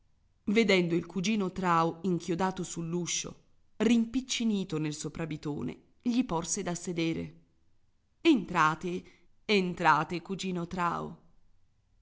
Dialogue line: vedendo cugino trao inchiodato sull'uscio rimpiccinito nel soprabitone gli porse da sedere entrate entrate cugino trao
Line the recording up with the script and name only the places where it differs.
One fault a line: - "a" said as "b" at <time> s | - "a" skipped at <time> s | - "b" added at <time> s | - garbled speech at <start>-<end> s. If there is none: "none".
- "il" added at 0.9 s